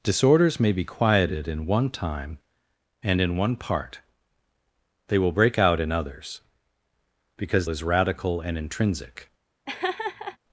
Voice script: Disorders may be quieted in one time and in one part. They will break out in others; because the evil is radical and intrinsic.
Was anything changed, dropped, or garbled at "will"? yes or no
no